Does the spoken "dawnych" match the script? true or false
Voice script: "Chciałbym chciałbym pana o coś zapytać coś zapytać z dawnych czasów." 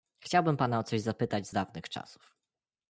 true